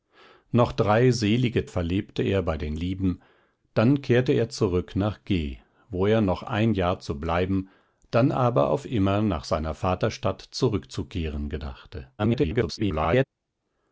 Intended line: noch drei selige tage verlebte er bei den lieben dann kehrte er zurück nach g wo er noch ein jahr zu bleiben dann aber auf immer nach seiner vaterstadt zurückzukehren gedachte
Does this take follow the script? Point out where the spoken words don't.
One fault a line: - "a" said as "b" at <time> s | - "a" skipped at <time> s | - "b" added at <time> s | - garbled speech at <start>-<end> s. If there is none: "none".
- "tage" skipped at 1.7 s
- garbled speech at 12.2-13.2 s